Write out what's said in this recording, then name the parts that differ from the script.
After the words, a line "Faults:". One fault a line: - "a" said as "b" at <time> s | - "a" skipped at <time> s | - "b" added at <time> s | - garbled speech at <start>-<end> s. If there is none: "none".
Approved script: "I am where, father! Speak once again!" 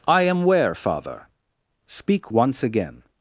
"I am where, father! Speak once again!"
Faults:
none